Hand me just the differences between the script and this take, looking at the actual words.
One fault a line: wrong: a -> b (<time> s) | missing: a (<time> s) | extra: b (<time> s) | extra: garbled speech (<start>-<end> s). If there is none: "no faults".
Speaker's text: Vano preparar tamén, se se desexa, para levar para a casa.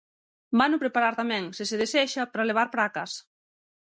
no faults